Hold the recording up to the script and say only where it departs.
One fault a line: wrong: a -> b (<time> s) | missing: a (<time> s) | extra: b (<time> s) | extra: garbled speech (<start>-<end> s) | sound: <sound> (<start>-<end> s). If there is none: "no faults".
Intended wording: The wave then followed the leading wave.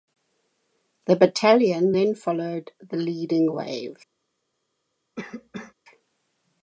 wrong: wave -> battalion (1.1 s)
sound: cough (5.2-5.7 s)